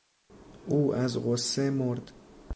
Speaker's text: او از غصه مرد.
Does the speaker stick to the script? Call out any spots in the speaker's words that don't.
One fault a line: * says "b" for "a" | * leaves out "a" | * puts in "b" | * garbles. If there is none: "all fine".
all fine